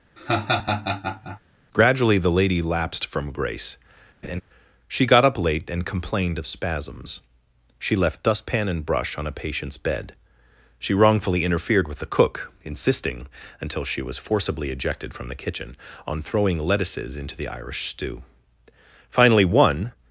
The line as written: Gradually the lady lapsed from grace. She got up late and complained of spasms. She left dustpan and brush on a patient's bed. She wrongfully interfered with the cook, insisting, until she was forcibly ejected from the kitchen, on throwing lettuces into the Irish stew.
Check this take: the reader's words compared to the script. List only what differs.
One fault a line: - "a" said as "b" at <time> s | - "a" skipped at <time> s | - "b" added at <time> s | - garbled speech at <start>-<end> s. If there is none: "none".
- "Finally one" added at 19.1 s